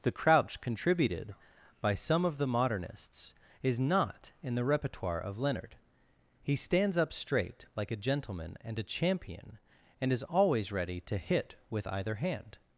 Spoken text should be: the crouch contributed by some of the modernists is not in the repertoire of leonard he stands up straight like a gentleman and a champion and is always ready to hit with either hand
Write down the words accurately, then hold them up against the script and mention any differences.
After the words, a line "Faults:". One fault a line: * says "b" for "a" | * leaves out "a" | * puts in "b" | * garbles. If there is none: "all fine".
the crouch contributed by some of the modernists is not in the repertoire of leonard he stands up straight like a gentleman and a champion and is always ready to hit with either hand
Faults:
all fine